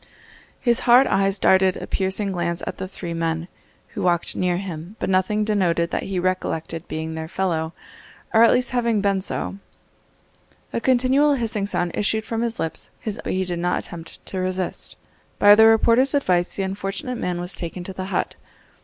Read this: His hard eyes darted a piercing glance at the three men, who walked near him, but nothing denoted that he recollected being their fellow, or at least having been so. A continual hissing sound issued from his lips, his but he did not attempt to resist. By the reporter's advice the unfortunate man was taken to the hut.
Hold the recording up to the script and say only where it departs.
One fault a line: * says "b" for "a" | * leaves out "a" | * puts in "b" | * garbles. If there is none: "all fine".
all fine